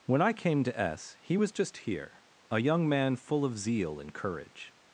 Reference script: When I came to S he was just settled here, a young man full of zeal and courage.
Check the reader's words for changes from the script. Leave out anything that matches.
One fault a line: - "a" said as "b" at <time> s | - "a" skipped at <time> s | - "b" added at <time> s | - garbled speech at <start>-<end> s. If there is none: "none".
- "settled" skipped at 1.8 s